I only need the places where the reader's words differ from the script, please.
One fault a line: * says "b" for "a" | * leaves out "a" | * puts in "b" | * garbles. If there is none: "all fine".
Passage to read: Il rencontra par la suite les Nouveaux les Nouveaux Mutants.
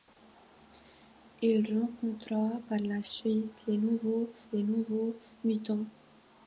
all fine